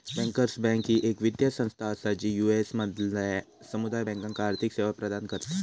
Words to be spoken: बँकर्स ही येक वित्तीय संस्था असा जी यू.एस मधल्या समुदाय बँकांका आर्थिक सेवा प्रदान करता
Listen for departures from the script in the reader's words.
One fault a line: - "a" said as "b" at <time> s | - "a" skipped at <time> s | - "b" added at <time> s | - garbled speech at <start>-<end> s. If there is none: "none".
- "बँक" added at 0.6 s